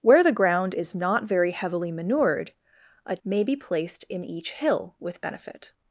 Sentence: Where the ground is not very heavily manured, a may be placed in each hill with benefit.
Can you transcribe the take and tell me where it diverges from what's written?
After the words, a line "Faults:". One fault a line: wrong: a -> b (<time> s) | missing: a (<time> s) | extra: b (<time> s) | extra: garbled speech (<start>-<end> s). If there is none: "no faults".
Where the ground is not very heavily manured, a may be placed in each hill with benefit.
Faults:
no faults